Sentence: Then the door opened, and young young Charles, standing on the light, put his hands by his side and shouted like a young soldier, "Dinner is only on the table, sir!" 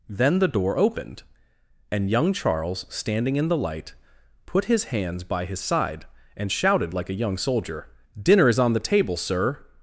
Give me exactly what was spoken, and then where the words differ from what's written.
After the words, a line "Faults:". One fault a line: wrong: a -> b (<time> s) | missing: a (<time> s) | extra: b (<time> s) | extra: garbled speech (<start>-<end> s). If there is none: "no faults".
Then the door opened, and young Charles, standing in the light, put his hands by his side and shouted like a young soldier, "Dinner is on the table, sir!"
Faults:
missing: young (2.3 s)
wrong: on -> in (3.4 s)
missing: only (8.6 s)